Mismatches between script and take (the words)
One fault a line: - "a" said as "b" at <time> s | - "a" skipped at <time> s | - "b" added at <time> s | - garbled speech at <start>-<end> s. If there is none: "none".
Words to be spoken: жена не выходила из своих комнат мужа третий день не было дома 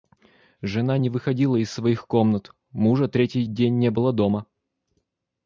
none